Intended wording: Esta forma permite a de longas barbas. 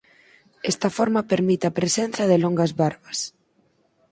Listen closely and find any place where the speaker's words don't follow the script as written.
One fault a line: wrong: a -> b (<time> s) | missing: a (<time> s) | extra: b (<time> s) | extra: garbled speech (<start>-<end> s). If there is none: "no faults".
extra: presenza (1.8 s)